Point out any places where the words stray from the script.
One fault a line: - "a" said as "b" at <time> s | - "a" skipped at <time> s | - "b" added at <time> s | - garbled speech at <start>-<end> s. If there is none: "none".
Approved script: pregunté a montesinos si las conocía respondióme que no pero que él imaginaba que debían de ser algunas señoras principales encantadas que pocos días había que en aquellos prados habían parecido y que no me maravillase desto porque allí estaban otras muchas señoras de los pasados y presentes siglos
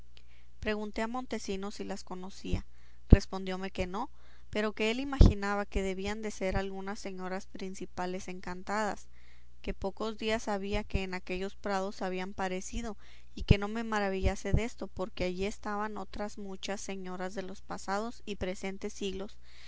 none